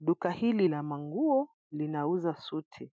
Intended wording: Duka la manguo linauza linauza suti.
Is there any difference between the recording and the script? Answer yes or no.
yes